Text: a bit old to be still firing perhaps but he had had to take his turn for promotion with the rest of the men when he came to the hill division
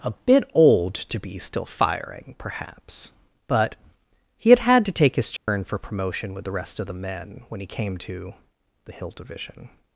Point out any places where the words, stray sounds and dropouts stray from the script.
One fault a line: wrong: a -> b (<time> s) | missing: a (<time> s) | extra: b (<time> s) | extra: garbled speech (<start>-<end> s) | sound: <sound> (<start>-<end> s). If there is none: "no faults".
sound: dropout (5.4-5.5 s)